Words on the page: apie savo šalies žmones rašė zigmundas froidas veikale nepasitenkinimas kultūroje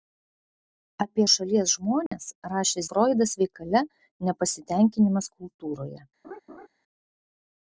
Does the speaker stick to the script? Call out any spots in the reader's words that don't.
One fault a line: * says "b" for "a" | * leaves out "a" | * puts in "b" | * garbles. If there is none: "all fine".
* leaves out "savo"
* leaves out "zigmundas"